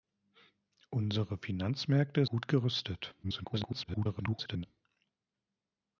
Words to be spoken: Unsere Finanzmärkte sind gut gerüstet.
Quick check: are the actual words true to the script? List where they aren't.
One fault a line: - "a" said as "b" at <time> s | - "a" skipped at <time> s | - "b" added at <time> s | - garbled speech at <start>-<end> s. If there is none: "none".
- "sind" skipped at 2.2 s
- garbled speech at 3.2-4.7 s